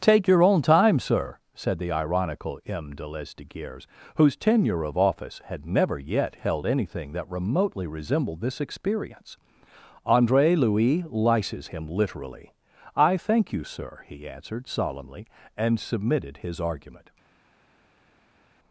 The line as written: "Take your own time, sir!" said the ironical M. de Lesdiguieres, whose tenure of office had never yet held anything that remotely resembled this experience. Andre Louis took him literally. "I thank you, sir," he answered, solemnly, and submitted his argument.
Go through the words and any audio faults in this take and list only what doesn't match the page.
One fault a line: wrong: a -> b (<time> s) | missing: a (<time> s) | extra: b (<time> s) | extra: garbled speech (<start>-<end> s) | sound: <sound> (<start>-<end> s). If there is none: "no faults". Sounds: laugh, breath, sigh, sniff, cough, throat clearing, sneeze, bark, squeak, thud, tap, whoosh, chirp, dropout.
wrong: took -> lices (11.0 s)